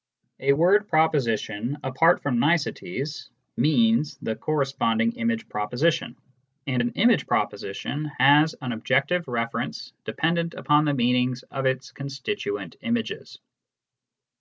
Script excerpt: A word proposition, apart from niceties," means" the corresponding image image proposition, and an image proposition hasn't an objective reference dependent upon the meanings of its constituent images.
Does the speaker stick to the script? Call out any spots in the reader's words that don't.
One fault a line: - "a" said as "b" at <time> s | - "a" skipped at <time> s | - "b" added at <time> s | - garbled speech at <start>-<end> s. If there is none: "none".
- "image" skipped at 5.5 s
- "hasn't" said as "has" at 8.2 s